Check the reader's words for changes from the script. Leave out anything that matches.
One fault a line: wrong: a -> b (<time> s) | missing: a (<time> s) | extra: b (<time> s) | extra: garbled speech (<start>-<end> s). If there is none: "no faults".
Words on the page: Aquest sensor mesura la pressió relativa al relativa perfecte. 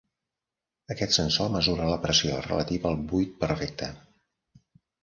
wrong: relativa -> buit (3.1 s)